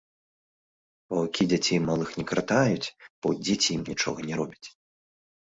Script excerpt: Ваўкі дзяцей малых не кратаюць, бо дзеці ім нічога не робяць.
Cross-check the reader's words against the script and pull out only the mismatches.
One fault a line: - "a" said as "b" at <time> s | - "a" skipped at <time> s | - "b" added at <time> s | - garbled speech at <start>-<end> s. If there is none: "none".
none